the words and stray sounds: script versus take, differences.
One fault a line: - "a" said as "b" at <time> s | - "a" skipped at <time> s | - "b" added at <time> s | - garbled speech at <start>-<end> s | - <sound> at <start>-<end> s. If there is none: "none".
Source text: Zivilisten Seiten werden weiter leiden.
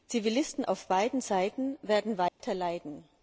- "auf beiden" added at 0.6 s
- dropout at 2.3-2.4 s